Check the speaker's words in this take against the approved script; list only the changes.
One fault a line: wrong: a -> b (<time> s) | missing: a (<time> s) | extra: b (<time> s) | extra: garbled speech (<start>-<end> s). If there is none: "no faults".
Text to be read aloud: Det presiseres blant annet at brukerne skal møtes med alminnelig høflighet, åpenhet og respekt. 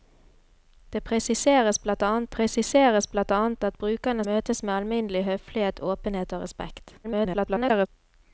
extra: presiseres blant annet (2.3 s)
missing: skal (4.2 s)
extra: garbled speech (7.0-7.9 s)